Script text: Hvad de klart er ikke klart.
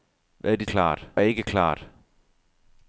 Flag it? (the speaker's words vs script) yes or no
no